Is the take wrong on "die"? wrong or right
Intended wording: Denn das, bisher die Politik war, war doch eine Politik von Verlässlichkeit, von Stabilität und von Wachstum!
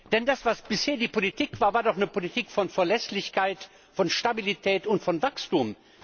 right